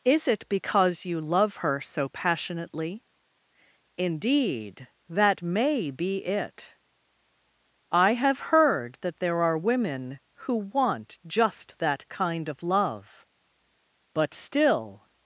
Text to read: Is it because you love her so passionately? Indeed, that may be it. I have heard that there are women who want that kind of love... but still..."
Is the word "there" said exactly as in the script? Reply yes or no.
yes